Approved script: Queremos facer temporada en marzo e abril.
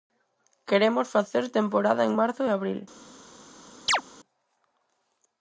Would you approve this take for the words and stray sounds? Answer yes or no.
no